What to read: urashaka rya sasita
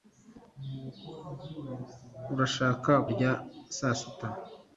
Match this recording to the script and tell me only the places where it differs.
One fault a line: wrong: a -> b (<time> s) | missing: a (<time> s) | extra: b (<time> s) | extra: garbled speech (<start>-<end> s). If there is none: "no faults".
no faults